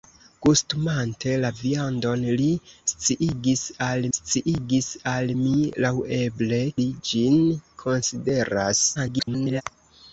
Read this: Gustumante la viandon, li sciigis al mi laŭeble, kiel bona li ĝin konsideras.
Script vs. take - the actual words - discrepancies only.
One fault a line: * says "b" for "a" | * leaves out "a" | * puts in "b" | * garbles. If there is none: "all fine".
* puts in "sciigis al"
* leaves out "kiel bona"
* garbles